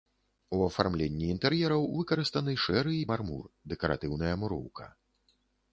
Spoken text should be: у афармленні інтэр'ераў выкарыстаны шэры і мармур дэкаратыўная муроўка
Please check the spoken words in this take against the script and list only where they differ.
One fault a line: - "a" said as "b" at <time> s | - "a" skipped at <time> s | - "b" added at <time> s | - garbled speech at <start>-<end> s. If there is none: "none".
none